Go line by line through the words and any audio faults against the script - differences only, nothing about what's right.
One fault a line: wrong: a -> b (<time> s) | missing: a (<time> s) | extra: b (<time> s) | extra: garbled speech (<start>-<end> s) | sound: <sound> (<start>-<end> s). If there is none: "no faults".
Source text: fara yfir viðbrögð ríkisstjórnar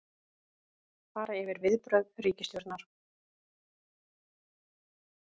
no faults